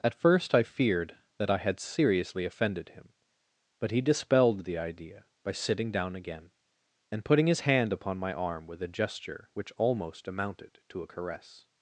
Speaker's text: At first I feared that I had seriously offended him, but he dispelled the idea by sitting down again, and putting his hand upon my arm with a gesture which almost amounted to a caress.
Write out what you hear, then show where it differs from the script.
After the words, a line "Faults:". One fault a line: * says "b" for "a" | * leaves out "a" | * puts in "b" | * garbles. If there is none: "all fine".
At first I feared that I had seriously offended him, but he dispelled the idea by sitting down again, and putting his hand upon my arm with a gesture which almost amounted to a caress.
Faults:
all fine